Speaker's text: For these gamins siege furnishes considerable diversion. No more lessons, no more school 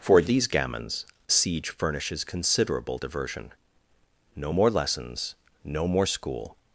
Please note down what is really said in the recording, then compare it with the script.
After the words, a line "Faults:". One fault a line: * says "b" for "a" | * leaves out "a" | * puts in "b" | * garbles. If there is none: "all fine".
For these gamins siege furnishes considerable diversion. No more lessons, no more school
Faults:
all fine